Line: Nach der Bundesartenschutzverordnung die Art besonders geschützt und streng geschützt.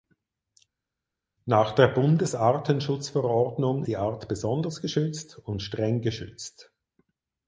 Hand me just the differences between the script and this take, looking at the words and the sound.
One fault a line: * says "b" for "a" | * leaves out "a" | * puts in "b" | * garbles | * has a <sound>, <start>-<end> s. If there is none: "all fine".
all fine